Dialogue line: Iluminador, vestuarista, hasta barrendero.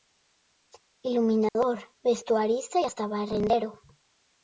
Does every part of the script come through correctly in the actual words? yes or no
yes